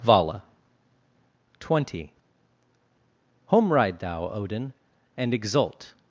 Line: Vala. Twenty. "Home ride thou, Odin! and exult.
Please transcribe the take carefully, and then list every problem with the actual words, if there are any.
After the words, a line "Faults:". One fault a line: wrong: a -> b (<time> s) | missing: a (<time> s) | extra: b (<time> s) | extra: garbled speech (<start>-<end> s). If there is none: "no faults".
Vala. Twenty. "Home ride thou, Odin! and exult.
Faults:
no faults